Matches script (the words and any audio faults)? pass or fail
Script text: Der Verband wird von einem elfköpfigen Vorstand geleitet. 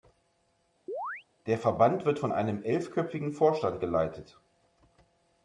fail